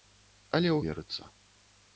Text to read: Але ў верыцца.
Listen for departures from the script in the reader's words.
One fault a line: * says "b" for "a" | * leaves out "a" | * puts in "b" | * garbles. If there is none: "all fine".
all fine